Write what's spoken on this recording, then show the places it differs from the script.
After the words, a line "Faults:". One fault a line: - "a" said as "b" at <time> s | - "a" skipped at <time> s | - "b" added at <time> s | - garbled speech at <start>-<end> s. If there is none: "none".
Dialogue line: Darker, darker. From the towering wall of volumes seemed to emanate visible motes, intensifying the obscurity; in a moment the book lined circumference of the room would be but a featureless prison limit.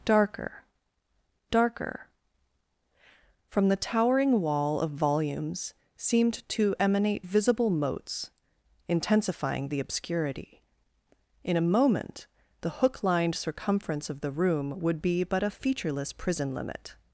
Darker, darker. From the towering wall of volumes seemed to emanate visible motes, intensifying the obscurity; in a moment the hook lined circumference of the room would be but a featureless prison limit.
Faults:
- "book" said as "hook" at 12.7 s